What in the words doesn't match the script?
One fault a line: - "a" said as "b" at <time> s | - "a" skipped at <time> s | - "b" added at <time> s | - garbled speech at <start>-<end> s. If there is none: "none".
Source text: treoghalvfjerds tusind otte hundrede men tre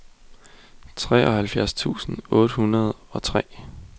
- "men" said as "og" at 3.1 s